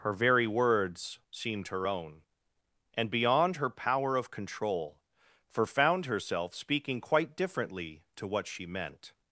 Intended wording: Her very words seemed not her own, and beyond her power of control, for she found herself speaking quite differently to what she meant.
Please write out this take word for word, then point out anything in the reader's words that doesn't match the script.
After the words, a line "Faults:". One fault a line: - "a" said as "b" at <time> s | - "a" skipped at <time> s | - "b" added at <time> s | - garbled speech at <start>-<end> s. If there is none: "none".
Her very words seemed her own, and beyond her power of control, for found herself speaking quite differently to what she meant.
Faults:
- "not" skipped at 1.7 s
- "she" skipped at 5.7 s